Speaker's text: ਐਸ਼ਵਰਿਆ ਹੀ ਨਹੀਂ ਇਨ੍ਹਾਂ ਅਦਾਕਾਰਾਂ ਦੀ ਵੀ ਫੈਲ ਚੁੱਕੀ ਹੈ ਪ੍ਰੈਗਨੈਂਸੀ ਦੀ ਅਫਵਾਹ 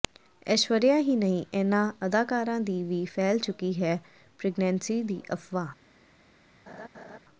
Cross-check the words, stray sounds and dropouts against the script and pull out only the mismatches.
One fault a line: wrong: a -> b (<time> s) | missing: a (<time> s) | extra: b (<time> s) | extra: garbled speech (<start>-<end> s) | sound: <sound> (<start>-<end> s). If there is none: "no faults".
sound: laugh (6.7-7.2 s)